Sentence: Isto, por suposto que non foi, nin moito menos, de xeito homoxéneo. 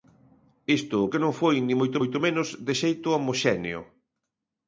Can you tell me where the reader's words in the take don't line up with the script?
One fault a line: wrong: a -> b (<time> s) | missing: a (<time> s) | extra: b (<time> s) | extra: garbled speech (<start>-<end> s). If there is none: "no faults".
missing: por suposto (1.0 s)
extra: moito (2.0 s)